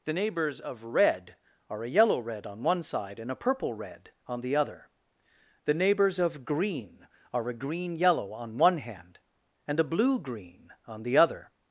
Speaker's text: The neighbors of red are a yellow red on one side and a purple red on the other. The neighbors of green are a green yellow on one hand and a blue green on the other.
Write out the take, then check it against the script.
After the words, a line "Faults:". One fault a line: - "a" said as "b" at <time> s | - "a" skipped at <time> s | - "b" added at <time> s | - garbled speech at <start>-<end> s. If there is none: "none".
The neighbors of red are a yellow red on one side and a purple red on the other. The neighbors of green are a green yellow on one hand and a blue green on the other.
Faults:
none